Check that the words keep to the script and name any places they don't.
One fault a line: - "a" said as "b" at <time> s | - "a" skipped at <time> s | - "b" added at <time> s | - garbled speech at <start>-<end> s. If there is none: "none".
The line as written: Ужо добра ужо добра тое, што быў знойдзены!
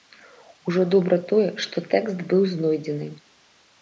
- "ужо добра" skipped at 1.2 s
- "тэкст" added at 1.9 s